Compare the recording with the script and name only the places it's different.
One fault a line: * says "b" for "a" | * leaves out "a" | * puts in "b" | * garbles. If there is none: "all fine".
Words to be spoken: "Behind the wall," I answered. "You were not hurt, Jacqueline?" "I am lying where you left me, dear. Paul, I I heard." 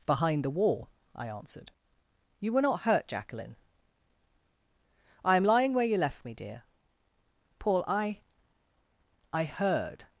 all fine